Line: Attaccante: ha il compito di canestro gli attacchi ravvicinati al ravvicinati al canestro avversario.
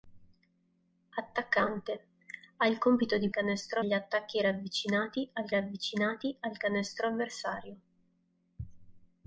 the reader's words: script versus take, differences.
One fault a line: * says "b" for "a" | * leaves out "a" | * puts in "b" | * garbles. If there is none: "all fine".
all fine